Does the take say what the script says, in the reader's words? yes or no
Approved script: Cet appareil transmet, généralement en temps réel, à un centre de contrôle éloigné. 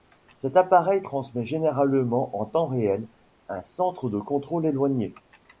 no